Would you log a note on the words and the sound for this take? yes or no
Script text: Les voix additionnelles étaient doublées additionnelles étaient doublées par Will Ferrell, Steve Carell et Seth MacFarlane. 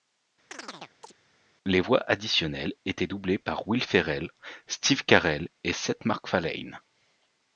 yes